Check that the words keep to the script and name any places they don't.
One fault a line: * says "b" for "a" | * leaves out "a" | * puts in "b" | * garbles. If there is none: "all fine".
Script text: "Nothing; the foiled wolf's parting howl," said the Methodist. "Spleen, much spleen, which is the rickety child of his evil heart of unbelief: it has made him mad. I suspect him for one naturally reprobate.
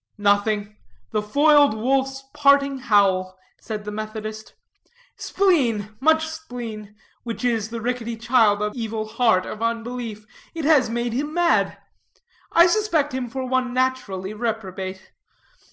* leaves out "his"